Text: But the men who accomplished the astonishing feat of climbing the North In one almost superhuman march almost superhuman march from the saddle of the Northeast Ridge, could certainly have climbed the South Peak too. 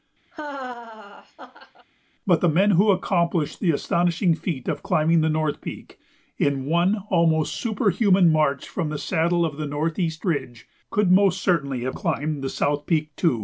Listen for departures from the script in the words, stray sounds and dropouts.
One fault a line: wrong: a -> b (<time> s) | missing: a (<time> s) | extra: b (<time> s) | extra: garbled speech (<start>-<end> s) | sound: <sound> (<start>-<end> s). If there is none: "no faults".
sound: laugh (0.3-1.9 s)
extra: Peak (5.6 s)
missing: almost superhuman march (8.7 s)
extra: most (11.1 s)